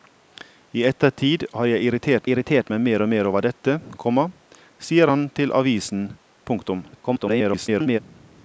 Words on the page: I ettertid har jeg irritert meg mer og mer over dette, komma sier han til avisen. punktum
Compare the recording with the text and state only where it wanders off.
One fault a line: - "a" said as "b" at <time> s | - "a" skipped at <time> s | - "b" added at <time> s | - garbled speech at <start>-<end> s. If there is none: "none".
- "irritert" added at 2.3 s
- garbled speech at 6.9-8.0 s